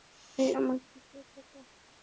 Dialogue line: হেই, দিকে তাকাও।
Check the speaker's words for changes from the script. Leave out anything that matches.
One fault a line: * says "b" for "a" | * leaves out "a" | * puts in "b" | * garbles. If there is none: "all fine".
* puts in "আমার"